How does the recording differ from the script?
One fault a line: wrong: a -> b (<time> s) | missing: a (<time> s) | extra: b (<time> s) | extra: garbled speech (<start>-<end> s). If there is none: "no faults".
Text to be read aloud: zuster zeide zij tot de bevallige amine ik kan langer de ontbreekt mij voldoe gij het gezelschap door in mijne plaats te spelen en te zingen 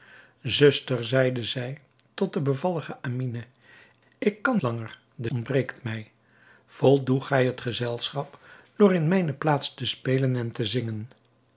no faults